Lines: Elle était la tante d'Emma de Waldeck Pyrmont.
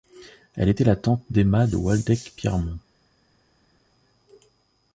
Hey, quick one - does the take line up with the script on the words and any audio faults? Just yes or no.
yes